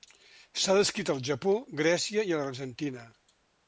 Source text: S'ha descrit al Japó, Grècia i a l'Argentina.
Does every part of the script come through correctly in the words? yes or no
yes